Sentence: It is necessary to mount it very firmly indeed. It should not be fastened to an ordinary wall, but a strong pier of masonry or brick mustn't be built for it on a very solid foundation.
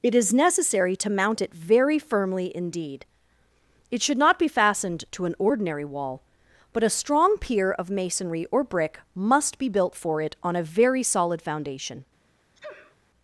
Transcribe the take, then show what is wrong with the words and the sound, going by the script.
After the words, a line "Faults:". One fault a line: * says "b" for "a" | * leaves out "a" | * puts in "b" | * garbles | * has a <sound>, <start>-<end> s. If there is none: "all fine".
It is necessary to mount it very firmly indeed. It should not be fastened to an ordinary wall, but a strong pier of masonry or brick must be built for it on a very solid foundation.
Faults:
* says "must" for "mustn't"
* has a sneeze, 12.6-13.0 s